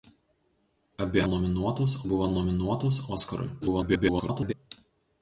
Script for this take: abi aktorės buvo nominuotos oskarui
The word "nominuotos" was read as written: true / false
true